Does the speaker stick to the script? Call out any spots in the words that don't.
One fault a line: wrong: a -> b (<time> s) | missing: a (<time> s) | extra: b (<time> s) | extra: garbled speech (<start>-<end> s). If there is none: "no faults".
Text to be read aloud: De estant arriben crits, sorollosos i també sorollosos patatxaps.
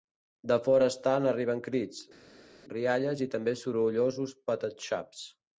extra: fora (0.7 s)
wrong: sorollosos -> rialles (2.8 s)